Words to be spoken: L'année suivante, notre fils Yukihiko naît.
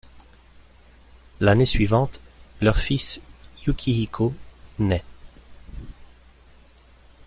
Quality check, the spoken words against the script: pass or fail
fail